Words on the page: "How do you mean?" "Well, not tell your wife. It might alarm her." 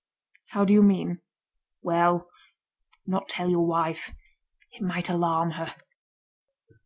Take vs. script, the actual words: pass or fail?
pass